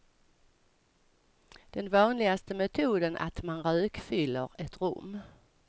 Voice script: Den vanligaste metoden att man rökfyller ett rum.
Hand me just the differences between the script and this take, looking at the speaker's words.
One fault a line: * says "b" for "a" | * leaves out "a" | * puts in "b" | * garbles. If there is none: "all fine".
all fine